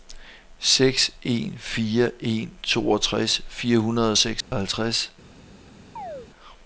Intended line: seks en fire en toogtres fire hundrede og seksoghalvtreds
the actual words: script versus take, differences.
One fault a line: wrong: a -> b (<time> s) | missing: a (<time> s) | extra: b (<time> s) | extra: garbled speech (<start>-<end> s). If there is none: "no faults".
no faults